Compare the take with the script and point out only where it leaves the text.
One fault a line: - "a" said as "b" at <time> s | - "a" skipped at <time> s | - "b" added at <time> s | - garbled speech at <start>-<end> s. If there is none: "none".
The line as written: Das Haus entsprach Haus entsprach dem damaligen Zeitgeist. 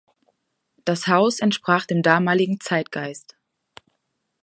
- "Haus entsprach" skipped at 1.9 s